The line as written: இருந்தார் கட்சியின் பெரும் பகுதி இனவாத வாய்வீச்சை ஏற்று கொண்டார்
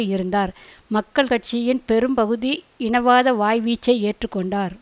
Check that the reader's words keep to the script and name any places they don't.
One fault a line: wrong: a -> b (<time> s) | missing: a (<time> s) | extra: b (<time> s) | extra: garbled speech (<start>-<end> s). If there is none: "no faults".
extra: மக்கள் (0.9 s)